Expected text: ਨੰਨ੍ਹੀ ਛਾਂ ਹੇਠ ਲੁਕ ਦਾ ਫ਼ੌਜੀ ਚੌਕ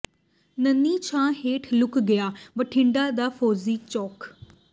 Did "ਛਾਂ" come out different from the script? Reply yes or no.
no